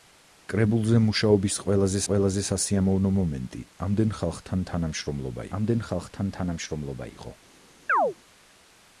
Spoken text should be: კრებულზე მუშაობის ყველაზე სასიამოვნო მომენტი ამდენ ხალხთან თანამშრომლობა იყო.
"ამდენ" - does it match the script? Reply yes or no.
yes